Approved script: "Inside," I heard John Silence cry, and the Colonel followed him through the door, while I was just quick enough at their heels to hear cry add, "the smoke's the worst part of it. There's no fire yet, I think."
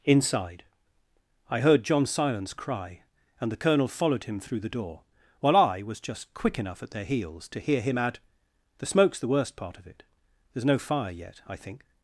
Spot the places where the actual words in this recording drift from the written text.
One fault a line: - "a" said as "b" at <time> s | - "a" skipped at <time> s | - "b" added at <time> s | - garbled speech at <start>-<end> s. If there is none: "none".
- "cry" said as "him" at 7.8 s